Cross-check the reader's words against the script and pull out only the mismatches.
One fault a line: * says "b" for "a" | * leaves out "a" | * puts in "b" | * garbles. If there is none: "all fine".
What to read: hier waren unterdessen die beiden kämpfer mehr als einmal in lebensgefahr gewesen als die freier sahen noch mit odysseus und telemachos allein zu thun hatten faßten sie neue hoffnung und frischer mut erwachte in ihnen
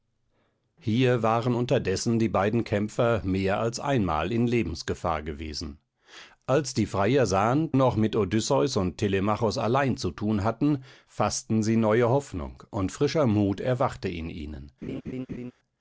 all fine